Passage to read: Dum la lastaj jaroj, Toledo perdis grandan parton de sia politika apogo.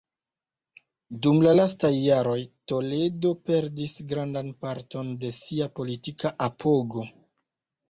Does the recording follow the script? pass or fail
pass